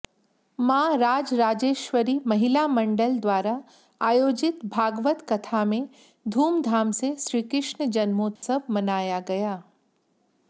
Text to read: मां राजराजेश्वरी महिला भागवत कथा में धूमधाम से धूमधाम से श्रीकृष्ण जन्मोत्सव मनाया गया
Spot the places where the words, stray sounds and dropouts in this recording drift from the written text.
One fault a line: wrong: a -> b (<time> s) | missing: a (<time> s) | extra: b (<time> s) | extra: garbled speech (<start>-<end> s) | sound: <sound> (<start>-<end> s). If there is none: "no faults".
extra: मंडल द्वारा आयोजित (2.7 s)
missing: धूमधाम से (7.1 s)
sound: dropout (8.4-8.4 s)